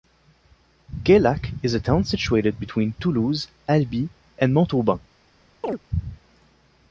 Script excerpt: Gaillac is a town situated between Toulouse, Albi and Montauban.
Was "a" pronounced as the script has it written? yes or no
yes